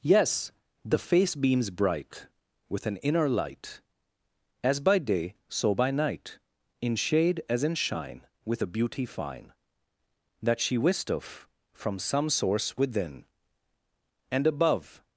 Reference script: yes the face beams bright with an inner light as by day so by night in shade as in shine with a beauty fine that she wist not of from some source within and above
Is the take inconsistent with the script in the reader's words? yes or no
yes